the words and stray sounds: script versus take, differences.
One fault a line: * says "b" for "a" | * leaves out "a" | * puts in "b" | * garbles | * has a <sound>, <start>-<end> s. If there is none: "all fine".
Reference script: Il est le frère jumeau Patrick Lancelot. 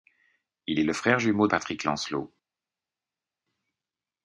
all fine